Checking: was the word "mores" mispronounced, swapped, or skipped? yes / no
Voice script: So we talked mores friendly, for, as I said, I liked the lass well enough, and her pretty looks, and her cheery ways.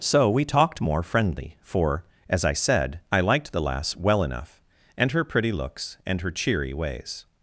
yes